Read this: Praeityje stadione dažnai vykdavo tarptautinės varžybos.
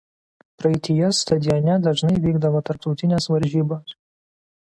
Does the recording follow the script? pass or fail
pass